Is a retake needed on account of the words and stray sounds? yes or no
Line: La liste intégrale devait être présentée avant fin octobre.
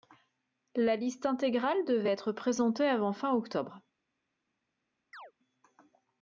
yes